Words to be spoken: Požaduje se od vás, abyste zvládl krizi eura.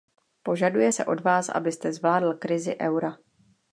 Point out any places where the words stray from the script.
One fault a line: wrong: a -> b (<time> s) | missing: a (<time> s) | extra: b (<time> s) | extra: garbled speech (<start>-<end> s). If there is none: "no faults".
no faults